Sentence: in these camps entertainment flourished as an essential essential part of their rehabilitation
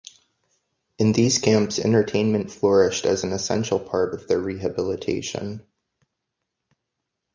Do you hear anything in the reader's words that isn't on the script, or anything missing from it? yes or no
yes